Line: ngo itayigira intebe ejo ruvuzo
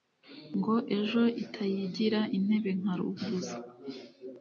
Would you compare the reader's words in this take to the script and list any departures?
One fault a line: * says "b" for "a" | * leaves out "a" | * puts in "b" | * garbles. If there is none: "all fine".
* puts in "ejo"
* says "nka" for "ejo"